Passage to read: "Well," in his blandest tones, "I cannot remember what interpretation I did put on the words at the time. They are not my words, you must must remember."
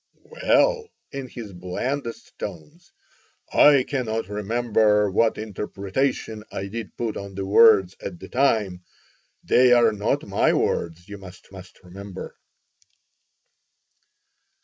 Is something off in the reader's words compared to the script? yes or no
no